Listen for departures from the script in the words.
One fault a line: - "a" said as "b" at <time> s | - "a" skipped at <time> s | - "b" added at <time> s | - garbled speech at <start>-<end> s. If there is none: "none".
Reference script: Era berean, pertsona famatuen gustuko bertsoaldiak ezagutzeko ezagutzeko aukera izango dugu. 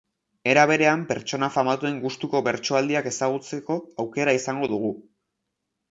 - "ezagutzeko" skipped at 3.8 s